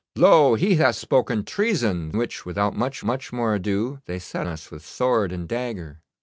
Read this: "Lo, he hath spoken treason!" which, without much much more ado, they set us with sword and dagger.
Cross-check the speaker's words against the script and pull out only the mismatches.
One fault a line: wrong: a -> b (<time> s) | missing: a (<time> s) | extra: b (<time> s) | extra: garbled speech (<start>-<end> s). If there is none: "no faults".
no faults